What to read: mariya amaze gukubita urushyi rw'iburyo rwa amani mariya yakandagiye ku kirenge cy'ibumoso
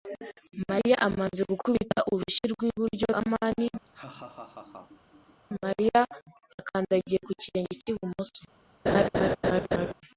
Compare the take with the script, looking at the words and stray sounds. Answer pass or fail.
fail